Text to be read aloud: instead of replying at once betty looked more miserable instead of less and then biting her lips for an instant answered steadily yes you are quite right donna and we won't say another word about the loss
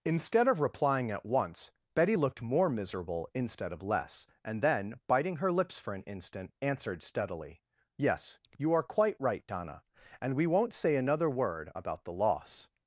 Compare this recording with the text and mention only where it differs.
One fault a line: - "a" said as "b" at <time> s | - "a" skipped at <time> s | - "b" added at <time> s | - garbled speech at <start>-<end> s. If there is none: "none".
none